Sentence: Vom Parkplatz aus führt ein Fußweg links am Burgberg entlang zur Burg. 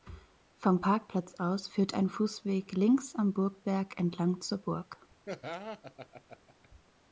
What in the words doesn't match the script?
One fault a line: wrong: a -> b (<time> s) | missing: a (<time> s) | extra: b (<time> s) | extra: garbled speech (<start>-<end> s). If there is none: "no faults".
no faults